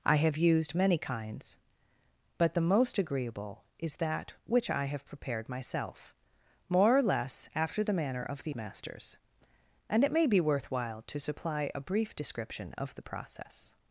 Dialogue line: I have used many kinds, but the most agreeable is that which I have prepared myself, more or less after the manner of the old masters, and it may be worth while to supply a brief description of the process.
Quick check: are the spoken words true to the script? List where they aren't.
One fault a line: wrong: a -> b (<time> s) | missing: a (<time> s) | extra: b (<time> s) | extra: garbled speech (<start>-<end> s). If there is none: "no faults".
missing: old (8.6 s)